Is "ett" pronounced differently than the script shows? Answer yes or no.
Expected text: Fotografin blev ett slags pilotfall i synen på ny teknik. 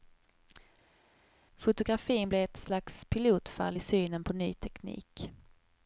no